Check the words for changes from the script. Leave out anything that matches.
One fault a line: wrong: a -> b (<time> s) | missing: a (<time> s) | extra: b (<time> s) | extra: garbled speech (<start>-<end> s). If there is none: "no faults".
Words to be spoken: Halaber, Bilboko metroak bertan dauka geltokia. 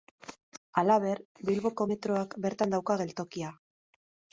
no faults